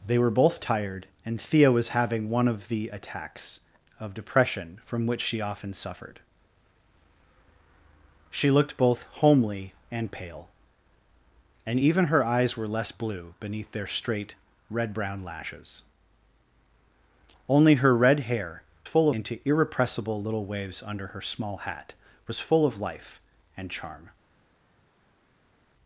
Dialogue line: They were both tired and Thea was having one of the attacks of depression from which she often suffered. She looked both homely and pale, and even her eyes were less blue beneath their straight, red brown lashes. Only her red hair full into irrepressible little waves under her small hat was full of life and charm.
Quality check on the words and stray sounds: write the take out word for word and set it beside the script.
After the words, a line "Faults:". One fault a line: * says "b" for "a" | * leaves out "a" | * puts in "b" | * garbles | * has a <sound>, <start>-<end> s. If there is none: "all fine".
They were both tired and Thea was having one of the attacks of depression from which she often suffered. She looked both homely and pale, and even her eyes were less blue beneath their straight, red brown lashes. Only her red hair full into irrepressible little waves under her small hat was full of life and charm.
Faults:
all fine